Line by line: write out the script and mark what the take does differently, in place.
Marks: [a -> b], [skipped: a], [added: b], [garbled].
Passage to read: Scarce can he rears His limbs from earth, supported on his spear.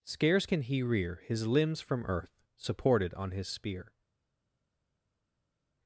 Scarce can he [rears -> rear] His limbs from earth, supported on his spear.